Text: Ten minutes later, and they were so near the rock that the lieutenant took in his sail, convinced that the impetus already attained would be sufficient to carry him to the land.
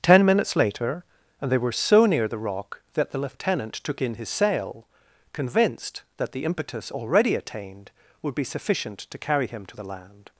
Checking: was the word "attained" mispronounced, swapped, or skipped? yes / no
no